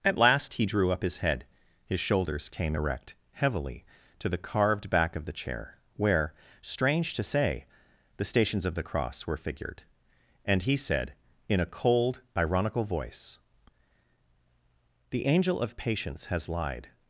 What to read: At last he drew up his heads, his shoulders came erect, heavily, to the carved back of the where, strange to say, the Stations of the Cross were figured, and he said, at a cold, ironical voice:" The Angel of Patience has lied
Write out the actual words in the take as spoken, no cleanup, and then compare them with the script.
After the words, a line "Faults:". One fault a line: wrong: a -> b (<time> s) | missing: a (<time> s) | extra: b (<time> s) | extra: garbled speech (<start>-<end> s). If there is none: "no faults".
At last he drew up his head, his shoulders came erect, heavily, to the carved back of the chair, where, strange to say, the Stations of the Cross were figured, and he said, in a cold, ironical voice:" The Angel of Patience has lied
Faults:
wrong: heads -> head (1.2 s)
extra: chair (5.3 s)
wrong: at -> in (11.5 s)